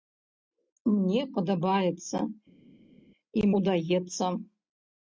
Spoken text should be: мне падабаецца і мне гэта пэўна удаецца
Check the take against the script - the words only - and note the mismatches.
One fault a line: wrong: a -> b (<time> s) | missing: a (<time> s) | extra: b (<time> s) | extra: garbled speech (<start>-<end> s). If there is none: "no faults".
missing: мне гэта пэўна (3.5 s)